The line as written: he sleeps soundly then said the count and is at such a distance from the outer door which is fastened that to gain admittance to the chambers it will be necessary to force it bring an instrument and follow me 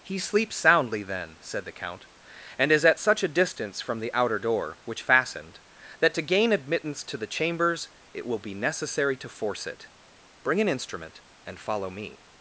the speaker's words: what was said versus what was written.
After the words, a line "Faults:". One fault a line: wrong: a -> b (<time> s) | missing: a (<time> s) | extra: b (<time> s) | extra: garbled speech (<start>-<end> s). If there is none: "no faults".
he sleeps soundly then said the count and is at such a distance from the outer door which fastened that to gain admittance to the chambers it will be necessary to force it bring an instrument and follow me
Faults:
missing: is (5.0 s)